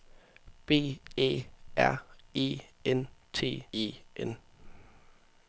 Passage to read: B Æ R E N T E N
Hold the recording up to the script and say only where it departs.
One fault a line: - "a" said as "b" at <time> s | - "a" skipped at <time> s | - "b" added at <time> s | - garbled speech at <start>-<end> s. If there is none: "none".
none